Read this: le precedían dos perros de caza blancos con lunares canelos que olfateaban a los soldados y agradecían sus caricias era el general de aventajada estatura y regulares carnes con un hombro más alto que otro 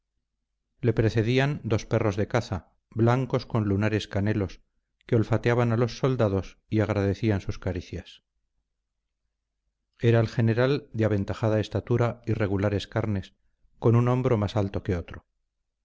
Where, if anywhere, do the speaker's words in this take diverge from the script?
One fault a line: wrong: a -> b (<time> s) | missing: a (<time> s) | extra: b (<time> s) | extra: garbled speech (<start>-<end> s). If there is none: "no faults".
no faults